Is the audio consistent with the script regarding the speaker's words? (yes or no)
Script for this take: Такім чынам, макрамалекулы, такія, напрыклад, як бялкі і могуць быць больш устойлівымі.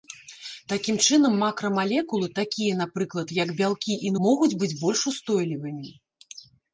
yes